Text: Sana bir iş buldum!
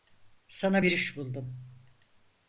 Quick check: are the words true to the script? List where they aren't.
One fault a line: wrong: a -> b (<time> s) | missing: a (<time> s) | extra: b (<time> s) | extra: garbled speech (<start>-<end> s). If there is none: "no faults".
no faults